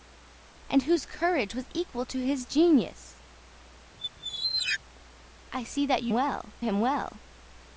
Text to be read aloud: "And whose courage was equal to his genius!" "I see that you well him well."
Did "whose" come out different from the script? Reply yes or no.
no